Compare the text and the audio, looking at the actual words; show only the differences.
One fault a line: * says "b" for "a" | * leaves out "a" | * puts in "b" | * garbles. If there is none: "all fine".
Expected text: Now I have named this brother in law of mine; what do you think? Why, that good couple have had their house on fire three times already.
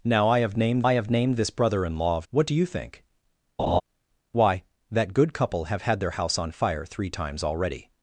* puts in "I have named"
* leaves out "mine"